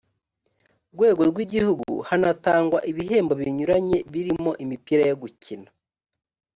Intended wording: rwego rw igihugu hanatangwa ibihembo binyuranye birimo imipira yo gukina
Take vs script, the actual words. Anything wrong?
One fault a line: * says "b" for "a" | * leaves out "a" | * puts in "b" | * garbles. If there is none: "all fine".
all fine